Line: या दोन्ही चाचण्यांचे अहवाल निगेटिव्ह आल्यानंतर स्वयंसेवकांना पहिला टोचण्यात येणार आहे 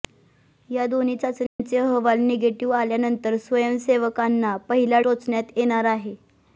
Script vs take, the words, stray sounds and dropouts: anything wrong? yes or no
yes